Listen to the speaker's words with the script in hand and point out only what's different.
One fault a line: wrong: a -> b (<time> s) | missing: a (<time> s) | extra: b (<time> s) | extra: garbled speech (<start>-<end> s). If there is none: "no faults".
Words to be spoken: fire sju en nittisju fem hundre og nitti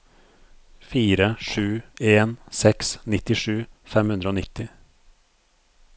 extra: seks (2.6 s)